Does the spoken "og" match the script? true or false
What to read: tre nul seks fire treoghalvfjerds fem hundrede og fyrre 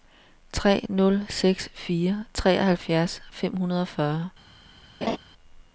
true